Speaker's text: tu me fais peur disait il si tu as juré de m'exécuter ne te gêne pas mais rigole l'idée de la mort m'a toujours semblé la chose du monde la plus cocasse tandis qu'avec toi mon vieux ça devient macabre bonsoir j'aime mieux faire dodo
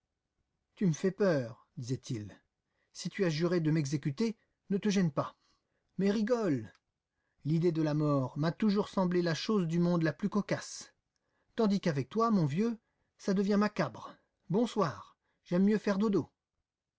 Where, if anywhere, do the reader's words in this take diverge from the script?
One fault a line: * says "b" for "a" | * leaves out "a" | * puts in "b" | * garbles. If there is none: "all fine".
all fine